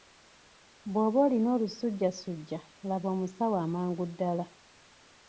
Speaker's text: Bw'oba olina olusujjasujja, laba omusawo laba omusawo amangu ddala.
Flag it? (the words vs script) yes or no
yes